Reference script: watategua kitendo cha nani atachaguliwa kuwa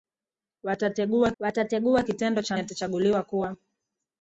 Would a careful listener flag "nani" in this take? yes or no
yes